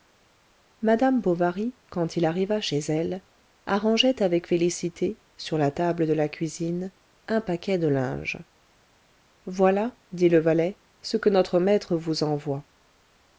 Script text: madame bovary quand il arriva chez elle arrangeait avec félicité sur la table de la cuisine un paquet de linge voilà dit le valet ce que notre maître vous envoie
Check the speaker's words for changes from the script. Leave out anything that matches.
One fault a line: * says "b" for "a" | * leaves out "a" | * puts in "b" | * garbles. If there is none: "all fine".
all fine